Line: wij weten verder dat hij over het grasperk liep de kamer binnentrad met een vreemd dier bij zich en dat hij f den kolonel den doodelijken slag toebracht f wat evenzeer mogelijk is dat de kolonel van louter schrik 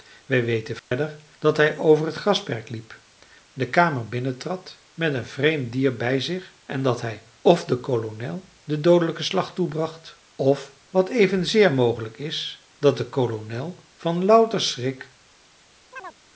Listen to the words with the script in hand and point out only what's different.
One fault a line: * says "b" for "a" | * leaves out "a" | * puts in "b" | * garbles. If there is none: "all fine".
all fine